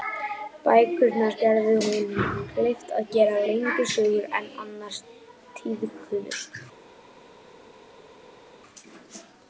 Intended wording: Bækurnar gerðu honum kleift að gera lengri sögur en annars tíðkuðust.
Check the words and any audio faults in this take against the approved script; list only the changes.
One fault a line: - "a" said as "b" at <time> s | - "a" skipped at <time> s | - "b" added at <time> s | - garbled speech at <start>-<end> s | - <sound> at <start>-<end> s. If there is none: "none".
none